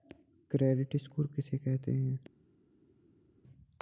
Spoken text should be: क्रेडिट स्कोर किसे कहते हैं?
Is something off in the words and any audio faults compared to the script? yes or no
no